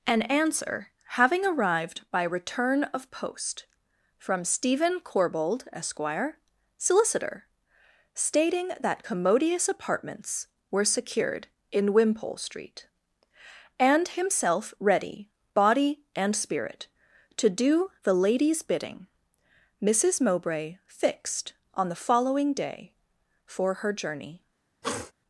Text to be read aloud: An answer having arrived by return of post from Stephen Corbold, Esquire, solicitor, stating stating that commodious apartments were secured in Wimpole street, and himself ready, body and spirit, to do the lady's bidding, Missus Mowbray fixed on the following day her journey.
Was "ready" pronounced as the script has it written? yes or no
yes